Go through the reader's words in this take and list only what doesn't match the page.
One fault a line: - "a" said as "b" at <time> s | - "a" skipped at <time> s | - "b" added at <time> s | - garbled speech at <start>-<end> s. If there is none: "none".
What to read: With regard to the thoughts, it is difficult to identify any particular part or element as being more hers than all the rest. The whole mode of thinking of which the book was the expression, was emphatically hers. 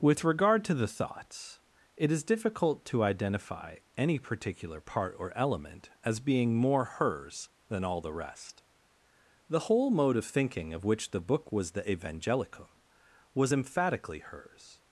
- "expression" said as "evangelicum" at 11.8 s